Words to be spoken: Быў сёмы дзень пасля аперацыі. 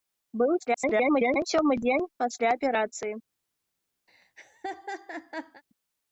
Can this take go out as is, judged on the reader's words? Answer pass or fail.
fail